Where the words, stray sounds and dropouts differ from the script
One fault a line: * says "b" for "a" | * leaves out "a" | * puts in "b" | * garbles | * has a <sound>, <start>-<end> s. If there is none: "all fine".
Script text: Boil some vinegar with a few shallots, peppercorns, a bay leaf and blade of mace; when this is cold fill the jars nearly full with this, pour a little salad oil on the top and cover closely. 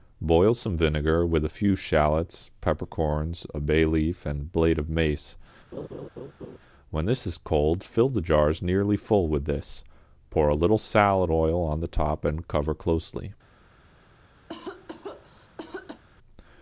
* has a laugh, 5.7-6.6 s
* has a cough, 14.5-16.0 s